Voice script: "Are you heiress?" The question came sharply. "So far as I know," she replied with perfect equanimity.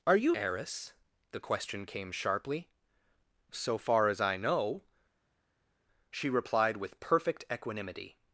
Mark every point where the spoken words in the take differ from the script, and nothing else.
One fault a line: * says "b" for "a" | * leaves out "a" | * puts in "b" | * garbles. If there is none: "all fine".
all fine